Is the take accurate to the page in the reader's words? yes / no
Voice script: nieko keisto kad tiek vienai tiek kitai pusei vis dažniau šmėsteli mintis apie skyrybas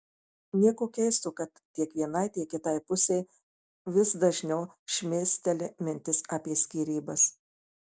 yes